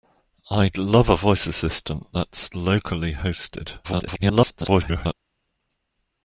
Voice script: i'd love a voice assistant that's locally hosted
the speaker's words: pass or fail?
fail